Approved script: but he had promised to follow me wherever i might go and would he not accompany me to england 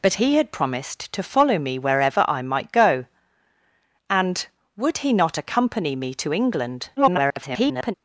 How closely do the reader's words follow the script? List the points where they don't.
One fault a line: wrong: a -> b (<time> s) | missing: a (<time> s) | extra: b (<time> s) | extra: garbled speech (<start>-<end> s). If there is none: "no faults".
extra: garbled speech (7.0-7.9 s)